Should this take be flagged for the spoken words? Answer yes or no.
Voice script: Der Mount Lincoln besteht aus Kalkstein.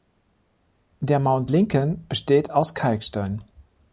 no